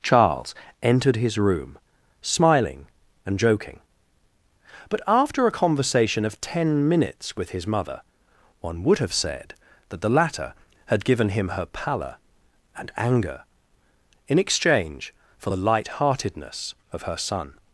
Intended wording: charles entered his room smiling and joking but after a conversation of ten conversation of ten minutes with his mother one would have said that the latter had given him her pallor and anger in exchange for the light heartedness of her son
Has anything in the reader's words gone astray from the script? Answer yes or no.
yes